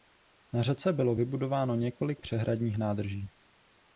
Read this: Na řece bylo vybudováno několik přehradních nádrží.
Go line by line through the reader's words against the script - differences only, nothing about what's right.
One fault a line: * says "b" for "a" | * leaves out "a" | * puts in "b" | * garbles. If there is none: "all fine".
all fine